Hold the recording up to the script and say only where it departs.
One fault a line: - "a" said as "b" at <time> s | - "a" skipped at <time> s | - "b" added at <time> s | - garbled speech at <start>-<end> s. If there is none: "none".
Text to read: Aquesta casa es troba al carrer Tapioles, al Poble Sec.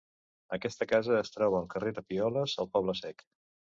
none